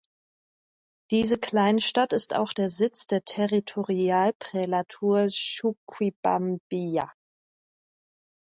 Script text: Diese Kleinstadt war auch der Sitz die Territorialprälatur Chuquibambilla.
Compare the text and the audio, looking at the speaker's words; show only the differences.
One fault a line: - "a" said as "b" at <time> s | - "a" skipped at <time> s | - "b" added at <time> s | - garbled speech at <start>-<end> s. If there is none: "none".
- "war" said as "ist" at 2.1 s
- "die" said as "der" at 3.1 s